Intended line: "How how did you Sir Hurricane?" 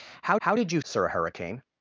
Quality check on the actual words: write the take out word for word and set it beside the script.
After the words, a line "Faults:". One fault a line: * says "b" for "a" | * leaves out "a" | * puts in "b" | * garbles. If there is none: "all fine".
"How how did you Sir Hurricane?"
Faults:
all fine